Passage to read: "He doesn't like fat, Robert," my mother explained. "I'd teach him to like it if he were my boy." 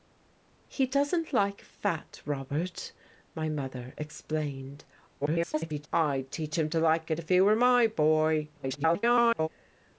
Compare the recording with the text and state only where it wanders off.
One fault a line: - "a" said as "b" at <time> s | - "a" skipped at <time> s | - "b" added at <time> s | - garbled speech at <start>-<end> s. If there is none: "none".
- garbled speech at 5.2-5.9 s
- garbled speech at 8.6-9.5 s